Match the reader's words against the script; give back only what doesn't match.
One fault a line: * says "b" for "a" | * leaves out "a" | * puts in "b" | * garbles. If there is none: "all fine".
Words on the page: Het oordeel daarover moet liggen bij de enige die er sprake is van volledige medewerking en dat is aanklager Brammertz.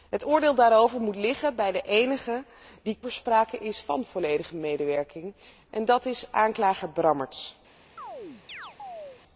all fine